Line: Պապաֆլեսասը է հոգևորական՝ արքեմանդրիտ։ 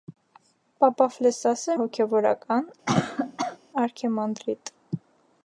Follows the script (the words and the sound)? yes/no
no